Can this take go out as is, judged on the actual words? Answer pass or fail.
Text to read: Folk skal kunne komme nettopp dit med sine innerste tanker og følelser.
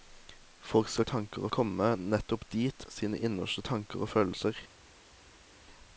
fail